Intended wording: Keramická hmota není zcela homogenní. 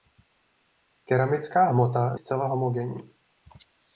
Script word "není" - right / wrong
wrong